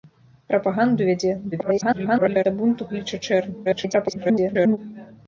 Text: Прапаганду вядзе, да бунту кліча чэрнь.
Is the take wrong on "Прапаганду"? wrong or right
right